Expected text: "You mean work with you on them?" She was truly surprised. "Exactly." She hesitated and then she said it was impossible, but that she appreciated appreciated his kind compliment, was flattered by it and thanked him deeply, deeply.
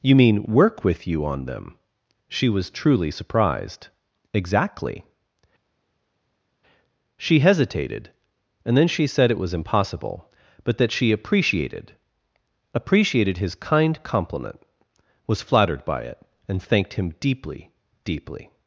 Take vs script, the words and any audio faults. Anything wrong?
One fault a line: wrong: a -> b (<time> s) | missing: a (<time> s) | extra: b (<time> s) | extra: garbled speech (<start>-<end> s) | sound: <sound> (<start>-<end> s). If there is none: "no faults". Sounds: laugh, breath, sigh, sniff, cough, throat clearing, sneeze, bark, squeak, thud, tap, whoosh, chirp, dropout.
no faults